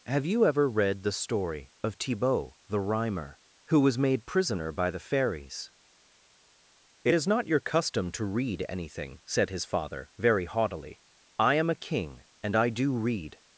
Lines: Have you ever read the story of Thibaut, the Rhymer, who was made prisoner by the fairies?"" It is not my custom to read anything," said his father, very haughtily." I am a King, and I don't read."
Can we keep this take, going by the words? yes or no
no